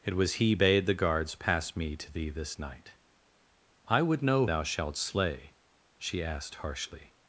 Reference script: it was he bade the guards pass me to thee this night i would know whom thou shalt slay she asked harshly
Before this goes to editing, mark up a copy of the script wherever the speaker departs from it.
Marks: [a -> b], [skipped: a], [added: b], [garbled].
it was he bade the guards pass me to thee this night i would know [skipped: whom] thou shalt slay she asked harshly